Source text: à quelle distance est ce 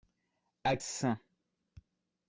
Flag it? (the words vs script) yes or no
yes